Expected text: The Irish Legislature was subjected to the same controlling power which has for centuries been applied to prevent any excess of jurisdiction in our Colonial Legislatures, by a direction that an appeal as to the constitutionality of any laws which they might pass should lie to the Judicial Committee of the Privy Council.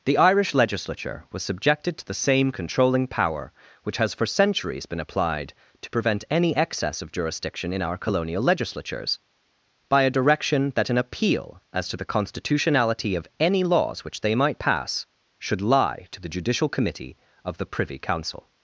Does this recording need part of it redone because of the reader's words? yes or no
no